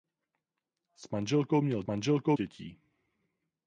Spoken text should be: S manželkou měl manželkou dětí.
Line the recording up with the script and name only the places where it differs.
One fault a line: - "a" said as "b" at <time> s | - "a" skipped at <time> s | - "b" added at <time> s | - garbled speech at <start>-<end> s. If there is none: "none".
none